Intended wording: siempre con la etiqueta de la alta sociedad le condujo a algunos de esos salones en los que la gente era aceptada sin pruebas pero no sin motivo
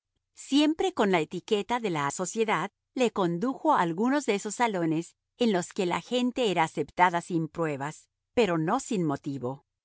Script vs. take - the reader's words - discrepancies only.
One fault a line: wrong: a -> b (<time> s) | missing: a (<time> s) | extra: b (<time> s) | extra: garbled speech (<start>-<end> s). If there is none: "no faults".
missing: alta (2.1 s)